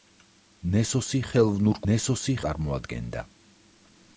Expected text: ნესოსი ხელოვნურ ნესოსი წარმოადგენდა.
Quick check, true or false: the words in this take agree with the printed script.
true